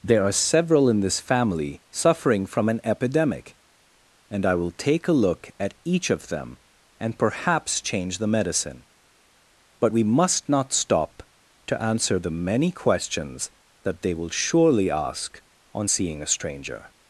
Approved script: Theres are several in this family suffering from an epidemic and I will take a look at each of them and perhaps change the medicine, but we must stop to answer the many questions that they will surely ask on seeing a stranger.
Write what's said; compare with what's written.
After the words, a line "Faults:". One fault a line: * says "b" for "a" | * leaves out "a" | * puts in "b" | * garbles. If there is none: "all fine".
There are several in this family suffering from an epidemic and I will take a look at each of them and perhaps change the medicine, but we must not stop to answer the many questions that they will surely ask on seeing a stranger.
Faults:
* says "There" for "Theres"
* puts in "not"